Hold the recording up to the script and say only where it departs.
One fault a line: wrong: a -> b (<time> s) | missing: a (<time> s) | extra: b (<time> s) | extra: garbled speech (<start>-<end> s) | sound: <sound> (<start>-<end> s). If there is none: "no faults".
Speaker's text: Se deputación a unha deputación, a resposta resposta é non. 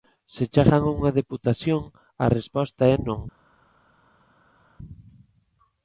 wrong: deputación -> chegan (0.5 s)
missing: resposta (2.8 s)